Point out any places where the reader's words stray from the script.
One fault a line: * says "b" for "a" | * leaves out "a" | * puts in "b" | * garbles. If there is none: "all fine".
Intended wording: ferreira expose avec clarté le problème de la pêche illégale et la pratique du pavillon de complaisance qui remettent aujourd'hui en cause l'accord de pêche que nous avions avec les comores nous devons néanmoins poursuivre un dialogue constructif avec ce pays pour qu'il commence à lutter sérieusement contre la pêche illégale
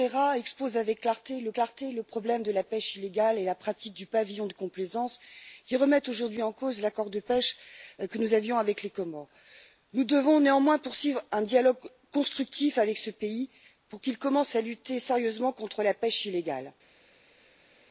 * puts in "clarté le"